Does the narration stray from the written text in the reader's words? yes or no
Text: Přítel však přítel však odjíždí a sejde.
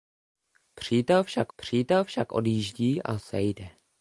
no